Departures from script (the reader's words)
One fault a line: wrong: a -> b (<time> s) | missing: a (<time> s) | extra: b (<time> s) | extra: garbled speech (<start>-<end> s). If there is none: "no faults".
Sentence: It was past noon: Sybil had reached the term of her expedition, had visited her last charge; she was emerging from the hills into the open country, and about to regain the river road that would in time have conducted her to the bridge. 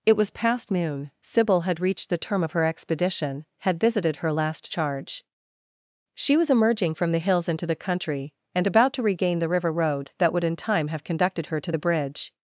missing: open (7.8 s)